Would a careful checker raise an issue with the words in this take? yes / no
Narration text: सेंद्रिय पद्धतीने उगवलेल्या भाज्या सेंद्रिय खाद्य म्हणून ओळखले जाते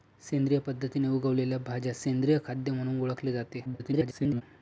yes